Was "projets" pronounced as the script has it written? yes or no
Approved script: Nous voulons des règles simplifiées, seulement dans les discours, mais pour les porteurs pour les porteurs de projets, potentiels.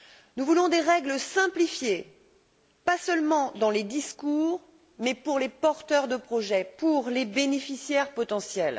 no